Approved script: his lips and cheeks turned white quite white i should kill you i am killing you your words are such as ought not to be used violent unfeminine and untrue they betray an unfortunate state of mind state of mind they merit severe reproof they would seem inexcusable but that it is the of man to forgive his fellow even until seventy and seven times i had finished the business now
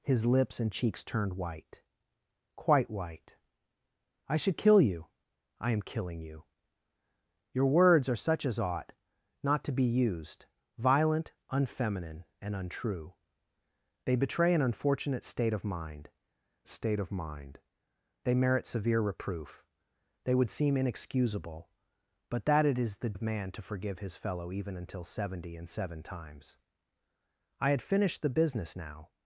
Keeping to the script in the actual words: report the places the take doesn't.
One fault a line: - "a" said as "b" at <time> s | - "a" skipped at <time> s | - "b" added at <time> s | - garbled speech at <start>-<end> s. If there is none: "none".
none